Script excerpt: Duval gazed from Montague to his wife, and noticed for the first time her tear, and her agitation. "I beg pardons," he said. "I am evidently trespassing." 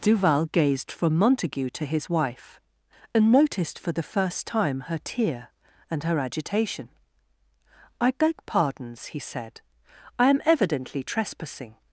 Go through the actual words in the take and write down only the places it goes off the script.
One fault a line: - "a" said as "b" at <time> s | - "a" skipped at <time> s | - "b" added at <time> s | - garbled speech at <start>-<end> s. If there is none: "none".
none